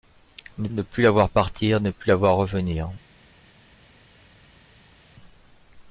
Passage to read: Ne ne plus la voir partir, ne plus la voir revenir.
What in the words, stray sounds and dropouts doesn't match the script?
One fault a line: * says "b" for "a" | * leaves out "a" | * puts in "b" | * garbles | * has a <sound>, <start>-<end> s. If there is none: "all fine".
all fine